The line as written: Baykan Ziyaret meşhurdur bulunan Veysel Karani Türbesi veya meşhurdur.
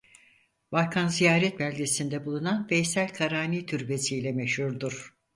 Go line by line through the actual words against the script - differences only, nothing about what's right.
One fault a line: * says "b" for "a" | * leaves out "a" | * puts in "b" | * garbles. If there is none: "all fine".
* says "beldesinde" for "meşhurdur"
* says "ile" for "veya"